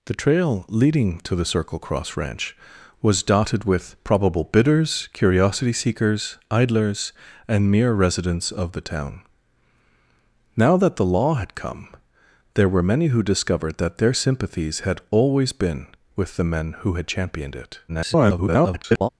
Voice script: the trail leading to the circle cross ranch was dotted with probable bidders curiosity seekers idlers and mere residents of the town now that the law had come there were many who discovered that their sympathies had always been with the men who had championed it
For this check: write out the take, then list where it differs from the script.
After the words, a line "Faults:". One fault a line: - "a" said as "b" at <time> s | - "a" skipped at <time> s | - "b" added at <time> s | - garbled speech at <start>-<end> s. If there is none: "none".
the trail leading to the circle cross ranch was dotted with probable bidders curiosity seekers idlers and mere residents of the town now that the law had come there were many who discovered that their sympathies had always been with the men who had championed it [garbled]
Faults:
- garbled speech at 17.9-19.1 s